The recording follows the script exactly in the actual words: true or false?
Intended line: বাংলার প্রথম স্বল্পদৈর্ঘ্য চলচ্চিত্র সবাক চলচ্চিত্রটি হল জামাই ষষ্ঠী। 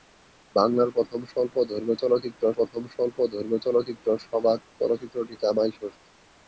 false